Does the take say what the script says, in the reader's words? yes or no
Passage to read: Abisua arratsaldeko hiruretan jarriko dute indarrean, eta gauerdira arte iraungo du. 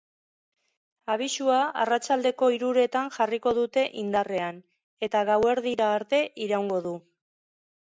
yes